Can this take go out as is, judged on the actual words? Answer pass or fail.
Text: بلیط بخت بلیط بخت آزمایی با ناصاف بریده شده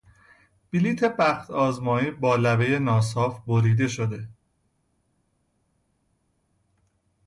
fail